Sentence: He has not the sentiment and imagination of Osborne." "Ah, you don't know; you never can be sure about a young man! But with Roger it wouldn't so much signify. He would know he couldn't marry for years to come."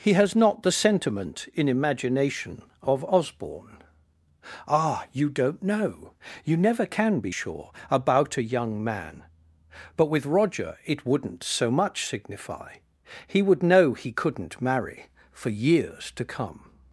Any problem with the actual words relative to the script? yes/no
yes